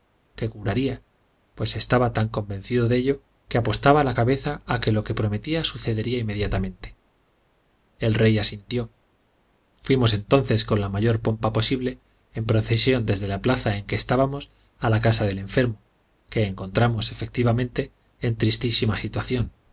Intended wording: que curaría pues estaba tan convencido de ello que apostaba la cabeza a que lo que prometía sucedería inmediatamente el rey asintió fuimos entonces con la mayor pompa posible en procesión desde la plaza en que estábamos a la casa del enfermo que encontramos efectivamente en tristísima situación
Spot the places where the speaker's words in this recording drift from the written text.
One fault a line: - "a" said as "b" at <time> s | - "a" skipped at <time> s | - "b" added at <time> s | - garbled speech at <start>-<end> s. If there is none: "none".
none